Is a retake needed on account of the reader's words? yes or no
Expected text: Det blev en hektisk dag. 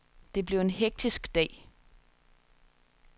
no